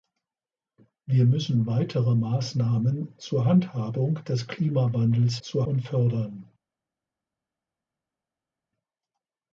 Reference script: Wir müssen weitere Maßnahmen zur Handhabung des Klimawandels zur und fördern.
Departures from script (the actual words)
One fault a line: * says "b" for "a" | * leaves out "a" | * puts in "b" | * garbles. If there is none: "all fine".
all fine